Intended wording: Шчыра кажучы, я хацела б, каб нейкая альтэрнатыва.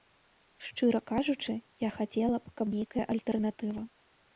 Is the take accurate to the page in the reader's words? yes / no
yes